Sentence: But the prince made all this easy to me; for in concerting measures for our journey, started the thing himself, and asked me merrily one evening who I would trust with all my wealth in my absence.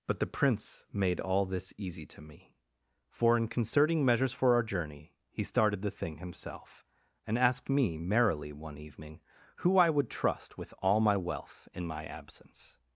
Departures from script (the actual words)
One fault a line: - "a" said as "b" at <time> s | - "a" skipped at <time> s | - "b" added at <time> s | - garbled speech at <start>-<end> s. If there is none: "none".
- "he" added at 5.3 s